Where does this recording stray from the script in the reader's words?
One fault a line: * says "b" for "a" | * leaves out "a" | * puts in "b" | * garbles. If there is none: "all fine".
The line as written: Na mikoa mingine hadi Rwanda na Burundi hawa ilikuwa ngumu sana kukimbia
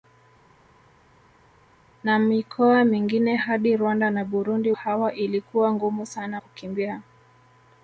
all fine